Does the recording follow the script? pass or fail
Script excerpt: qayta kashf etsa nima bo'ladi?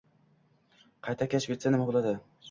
pass